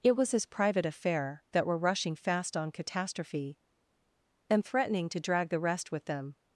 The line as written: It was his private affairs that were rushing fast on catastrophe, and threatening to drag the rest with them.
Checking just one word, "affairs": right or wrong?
wrong